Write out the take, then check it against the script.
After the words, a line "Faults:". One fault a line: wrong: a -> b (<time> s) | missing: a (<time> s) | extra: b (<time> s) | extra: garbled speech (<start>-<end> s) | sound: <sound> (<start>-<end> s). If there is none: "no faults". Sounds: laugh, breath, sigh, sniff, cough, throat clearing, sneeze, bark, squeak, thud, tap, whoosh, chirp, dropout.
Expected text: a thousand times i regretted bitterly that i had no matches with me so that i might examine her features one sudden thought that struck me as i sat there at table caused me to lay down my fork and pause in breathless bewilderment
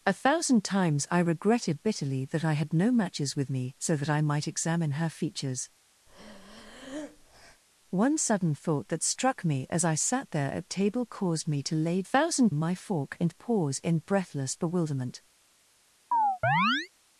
a thousand times i regretted bitterly that i had no matches with me so that i might examine her features one sudden thought that struck me as i sat there at table caused me to lay thousand my fork and pause in breathless bewilderment
Faults:
sound: breath (6.1-7.6 s)
wrong: down -> thousand (12.0 s)
sound: chirp (16.1-16.9 s)